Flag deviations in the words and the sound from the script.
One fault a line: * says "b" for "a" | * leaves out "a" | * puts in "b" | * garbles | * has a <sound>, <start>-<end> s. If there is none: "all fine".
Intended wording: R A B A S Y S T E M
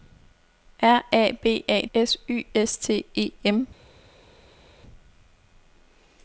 all fine